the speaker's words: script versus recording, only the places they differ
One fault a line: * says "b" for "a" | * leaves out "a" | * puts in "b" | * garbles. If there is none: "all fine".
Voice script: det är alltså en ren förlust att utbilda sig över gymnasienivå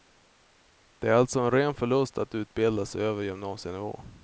all fine